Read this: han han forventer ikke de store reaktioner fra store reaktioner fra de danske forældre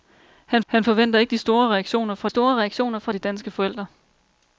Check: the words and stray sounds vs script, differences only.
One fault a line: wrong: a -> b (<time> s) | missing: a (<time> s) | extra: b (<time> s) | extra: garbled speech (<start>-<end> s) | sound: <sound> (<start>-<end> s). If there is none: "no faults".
no faults